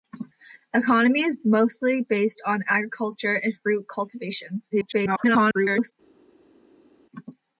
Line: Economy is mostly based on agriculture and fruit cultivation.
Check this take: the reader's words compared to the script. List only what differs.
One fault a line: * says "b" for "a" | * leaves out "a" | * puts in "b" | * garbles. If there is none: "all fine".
* garbles